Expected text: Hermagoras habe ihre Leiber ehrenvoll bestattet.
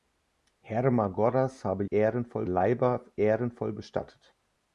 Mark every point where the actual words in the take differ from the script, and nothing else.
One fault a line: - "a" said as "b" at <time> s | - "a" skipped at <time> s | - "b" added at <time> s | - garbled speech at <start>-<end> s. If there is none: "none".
- "ihre" said as "ehrenvoll" at 1.9 s